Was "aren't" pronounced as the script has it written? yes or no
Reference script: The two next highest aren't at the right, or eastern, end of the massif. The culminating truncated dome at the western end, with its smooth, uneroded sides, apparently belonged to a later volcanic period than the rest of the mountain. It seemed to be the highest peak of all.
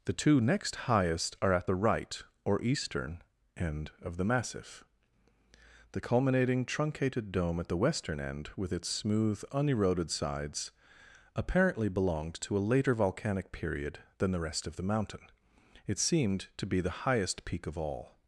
no